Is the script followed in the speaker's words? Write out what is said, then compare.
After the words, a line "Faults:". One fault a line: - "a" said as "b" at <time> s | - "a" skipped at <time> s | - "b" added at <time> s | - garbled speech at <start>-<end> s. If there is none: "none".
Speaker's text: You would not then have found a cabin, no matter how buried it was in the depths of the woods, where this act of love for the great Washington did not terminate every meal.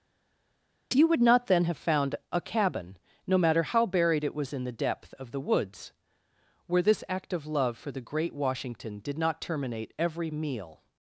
You would not then have found a cabin, no matter how buried it was in the depth of the woods, where this act of love for the great Washington did not terminate every meal.
Faults:
- "depths" said as "depth" at 4.7 s